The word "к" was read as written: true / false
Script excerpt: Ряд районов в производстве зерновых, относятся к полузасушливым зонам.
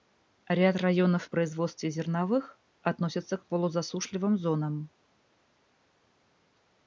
true